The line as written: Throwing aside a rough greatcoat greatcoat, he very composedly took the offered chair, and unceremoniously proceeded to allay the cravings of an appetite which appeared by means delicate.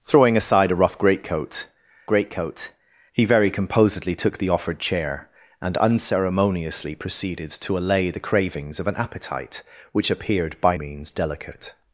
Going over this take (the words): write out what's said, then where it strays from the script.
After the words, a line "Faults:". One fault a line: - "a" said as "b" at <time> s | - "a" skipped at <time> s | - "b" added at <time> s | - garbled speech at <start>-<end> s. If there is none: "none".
Throwing aside a rough greatcoat greatcoat, he very composedly took the offered chair, and unceremoniously proceeded to allay the cravings of an appetite which appeared by means delicate.
Faults:
none